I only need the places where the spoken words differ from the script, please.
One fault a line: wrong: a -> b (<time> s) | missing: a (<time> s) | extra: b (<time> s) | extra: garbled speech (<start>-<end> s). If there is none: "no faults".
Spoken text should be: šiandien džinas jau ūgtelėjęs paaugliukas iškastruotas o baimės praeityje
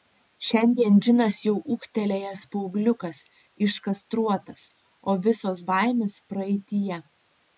extra: visos (5.3 s)